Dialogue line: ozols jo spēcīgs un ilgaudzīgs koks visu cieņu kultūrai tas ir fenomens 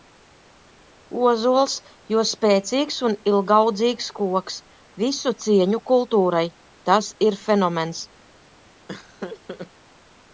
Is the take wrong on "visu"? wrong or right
right